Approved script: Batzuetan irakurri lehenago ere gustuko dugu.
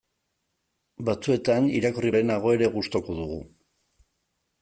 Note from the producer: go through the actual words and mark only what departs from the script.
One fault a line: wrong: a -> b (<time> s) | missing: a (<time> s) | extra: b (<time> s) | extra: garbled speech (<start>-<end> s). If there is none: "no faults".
no faults